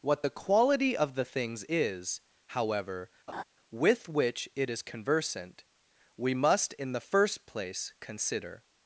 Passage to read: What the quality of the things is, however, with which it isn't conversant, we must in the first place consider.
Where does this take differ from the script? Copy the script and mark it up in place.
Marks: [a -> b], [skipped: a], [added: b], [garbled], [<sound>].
What the quality of the things is, however, [laugh] with which it [isn't -> is] conversant, we must in the first place consider.